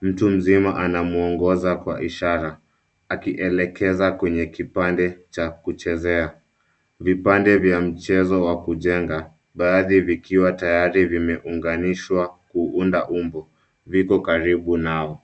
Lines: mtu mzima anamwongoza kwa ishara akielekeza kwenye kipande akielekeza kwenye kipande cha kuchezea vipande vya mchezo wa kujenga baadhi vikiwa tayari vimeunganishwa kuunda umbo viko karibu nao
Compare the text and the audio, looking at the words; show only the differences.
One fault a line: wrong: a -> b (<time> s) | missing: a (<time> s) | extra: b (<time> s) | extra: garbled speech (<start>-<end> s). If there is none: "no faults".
missing: akielekeza kwenye kipande (5.2 s)